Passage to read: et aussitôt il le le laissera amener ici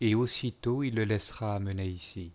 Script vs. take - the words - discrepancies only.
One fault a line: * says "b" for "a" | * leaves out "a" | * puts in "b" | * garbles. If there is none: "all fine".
* leaves out "le"